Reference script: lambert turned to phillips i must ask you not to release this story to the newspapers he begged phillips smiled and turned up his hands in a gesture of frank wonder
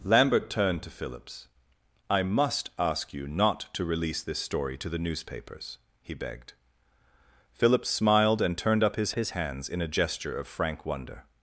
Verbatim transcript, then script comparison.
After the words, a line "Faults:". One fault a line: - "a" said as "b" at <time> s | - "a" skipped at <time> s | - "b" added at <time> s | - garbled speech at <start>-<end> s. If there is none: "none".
lambert turned to phillips i must ask you not to release this story to the newspapers he begged phillips smiled and turned up his his hands in a gesture of frank wonder
Faults:
- "his" added at 9.1 s